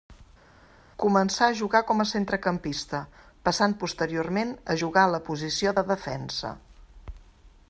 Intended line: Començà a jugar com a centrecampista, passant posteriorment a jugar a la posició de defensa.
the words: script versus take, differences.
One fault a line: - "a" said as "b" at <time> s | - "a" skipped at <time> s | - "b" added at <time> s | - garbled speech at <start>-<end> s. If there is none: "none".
none